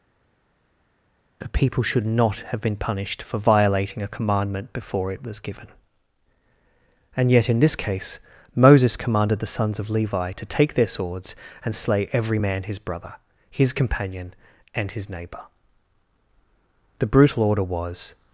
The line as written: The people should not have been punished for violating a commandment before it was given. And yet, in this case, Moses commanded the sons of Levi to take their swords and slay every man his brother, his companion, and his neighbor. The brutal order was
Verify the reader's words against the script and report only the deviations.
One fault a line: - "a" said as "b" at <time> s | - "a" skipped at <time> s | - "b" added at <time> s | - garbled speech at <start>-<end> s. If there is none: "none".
none